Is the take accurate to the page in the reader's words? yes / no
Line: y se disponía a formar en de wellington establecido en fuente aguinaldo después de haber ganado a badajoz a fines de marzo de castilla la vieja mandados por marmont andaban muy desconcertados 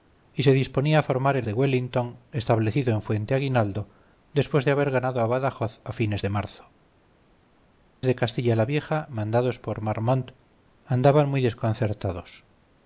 yes